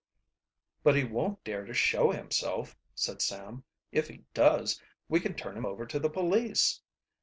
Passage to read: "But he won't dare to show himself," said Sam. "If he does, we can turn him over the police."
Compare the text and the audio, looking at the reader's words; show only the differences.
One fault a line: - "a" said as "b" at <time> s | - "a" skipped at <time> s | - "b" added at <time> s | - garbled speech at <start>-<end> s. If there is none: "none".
- "to" added at 5.9 s